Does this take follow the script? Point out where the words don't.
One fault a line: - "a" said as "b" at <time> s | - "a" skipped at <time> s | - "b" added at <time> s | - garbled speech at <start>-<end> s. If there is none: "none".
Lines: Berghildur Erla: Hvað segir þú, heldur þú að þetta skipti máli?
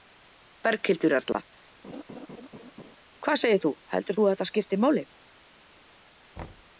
none